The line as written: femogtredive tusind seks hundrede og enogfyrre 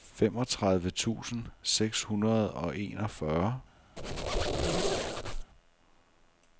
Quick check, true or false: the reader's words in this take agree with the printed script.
true